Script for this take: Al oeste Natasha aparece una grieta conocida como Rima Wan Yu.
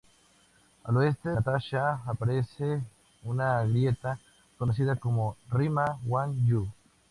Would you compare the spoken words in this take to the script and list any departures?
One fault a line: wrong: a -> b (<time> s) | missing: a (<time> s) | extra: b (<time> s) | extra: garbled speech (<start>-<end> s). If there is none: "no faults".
no faults